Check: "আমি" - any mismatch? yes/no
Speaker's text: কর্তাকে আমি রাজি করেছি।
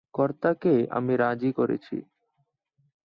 no